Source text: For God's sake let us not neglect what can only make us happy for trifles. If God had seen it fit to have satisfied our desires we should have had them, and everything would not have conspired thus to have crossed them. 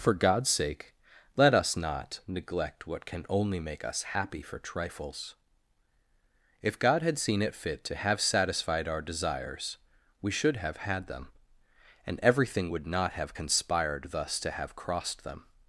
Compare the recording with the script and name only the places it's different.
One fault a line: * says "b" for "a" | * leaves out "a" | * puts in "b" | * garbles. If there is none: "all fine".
all fine